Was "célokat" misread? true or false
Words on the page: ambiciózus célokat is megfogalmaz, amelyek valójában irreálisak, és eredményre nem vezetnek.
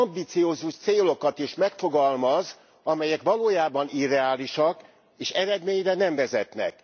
false